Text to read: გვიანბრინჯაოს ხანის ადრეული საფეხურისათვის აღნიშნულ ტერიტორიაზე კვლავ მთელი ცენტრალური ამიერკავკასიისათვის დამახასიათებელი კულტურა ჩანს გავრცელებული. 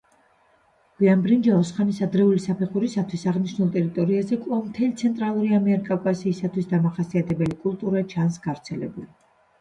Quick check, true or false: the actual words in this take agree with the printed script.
true